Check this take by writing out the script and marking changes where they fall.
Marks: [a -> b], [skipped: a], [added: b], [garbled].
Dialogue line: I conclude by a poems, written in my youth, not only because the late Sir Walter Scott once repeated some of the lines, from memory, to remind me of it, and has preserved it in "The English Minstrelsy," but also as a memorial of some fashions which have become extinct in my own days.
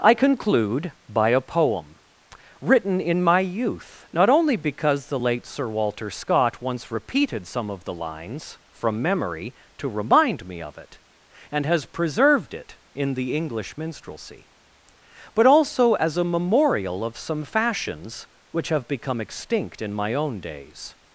I conclude by a [poems, -> poem] written in my youth, not only because the late Sir Walter Scott once repeated some of the lines, from memory, to remind me of it, and has preserved it in "The English Minstrelsy," but also as a memorial of some fashions which have become extinct in my own days.